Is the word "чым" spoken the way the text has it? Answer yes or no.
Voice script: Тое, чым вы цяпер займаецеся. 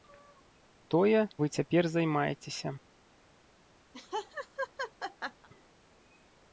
no